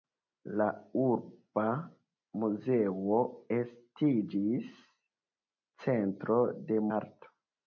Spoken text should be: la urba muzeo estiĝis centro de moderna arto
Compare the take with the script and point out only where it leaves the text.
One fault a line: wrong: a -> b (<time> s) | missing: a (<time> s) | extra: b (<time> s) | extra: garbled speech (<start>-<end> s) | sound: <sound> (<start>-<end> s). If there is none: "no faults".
missing: moderna (6.8 s)